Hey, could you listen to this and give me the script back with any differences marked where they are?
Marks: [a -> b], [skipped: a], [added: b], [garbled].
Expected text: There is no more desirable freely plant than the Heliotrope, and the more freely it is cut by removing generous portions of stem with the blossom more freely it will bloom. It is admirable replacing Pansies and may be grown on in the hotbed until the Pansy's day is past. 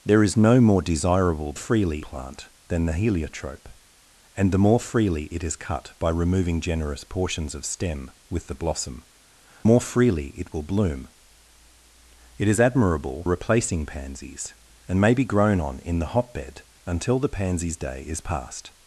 There is no more desirable freely plant than the Heliotrope, and the more freely it is cut by removing generous portions of stem with the blossom more freely it will bloom. It is admirable replacing Pansies and may be grown on in the hotbed until the Pansy's day is past.